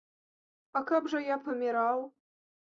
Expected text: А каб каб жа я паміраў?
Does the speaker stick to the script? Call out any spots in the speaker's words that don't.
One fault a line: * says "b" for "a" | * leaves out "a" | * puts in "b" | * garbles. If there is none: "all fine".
* leaves out "каб"